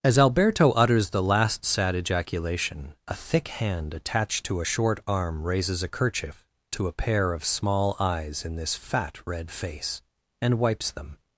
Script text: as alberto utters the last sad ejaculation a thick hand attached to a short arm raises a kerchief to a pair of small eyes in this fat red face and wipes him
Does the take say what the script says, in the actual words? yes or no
no